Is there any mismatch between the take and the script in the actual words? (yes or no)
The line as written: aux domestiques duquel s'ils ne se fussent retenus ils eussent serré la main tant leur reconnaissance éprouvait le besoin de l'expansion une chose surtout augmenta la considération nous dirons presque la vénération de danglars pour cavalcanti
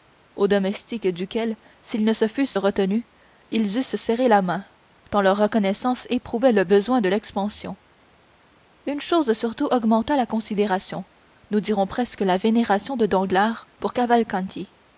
no